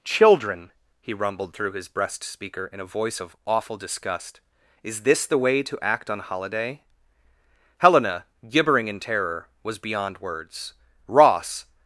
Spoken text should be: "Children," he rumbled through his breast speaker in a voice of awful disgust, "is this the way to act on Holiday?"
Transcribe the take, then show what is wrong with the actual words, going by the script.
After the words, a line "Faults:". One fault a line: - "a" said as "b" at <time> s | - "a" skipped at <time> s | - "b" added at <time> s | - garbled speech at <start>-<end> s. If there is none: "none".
"Children," he rumbled through his breast speaker in a voice of awful disgust, "is this the way to act on Holiday?" Helena, gibbering in terror, was beyond words. Ross
Faults:
- "Helena gibbering in terror was beyond words Ross" added at 7.8 s